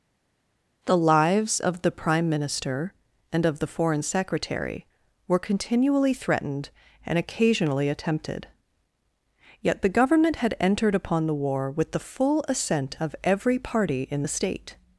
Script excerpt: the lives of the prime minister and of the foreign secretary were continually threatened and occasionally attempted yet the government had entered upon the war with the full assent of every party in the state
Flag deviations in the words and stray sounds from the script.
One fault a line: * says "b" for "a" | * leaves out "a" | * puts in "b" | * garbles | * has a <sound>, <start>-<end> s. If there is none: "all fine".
all fine